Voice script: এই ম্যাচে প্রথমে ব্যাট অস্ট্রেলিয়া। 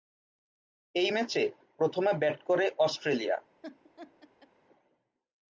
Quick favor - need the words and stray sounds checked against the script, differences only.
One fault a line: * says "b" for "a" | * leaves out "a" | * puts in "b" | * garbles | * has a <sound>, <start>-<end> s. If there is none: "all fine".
* puts in "করে"
* has a laugh, 3.6-4.5 s